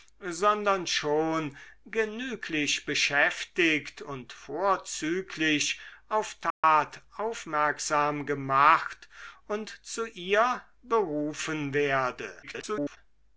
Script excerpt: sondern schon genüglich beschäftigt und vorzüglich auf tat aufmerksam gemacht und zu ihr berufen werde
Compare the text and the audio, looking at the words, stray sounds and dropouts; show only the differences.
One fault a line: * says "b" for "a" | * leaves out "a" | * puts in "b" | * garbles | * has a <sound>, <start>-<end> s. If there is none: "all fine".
* has a dropout, 6.5-6.6 s
* garbles